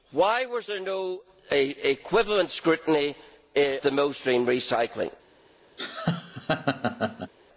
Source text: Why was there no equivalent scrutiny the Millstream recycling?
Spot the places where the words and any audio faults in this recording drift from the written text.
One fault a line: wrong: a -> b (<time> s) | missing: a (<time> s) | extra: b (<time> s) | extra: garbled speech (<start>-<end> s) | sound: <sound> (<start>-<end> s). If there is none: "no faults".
sound: laugh (5.8-7.3 s)